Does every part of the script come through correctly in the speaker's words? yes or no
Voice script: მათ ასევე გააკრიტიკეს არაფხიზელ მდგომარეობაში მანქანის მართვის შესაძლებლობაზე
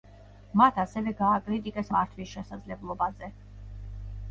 no